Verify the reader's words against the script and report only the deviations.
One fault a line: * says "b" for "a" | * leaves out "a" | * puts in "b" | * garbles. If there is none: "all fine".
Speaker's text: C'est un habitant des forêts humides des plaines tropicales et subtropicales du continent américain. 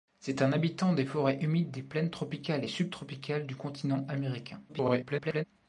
* garbles